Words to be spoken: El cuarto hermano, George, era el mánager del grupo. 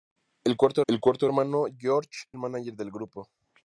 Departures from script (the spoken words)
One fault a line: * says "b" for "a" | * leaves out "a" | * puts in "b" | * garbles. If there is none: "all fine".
* puts in "el cuarto"
* leaves out "era"